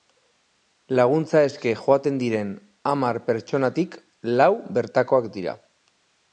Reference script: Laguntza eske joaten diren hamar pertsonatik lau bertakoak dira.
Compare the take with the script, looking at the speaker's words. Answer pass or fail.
pass